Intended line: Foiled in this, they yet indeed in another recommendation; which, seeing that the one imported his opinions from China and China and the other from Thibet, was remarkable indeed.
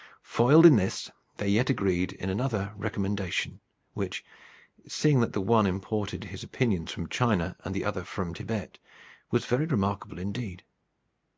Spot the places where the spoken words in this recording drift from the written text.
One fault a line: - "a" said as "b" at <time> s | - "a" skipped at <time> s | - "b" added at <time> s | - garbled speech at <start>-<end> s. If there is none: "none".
- "indeed" said as "agreed" at 1.7 s
- "China and" skipped at 7.8 s
- "very" added at 9.4 s